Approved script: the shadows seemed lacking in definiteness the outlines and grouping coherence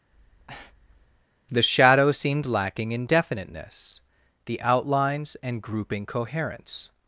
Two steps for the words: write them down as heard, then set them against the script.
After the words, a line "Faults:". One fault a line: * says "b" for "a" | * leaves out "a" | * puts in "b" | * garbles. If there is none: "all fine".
the shadows seemed lacking in definiteness the outlines and grouping coherence
Faults:
all fine